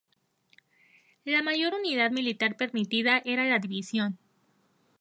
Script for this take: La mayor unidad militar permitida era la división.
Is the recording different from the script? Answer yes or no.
no